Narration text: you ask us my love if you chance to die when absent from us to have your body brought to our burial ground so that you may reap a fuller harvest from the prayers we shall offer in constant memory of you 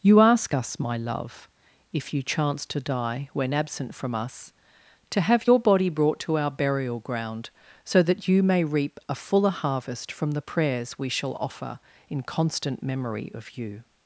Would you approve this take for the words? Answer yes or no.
yes